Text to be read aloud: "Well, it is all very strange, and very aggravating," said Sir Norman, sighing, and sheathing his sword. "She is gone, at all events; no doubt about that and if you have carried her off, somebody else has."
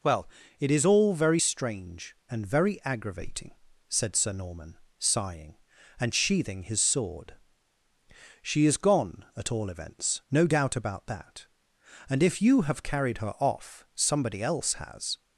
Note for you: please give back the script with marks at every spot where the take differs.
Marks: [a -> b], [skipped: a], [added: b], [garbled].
"Well, it is all very strange, and very aggravating," said Sir Norman, sighing, and sheathing his sword. "She is gone, at all events; no doubt about that and if you have carried her off, somebody else has."